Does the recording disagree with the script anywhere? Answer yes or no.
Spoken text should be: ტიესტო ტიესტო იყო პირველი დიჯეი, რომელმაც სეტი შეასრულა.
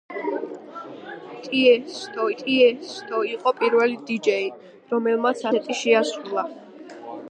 no